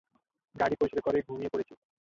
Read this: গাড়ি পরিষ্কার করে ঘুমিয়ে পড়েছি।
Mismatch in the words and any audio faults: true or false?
false